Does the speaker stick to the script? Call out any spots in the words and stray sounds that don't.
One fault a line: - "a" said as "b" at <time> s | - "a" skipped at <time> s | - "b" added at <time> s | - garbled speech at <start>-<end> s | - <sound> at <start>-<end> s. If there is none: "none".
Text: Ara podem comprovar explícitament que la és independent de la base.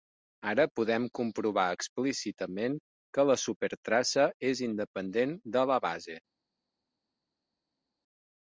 - "supertraça" added at 3.4 s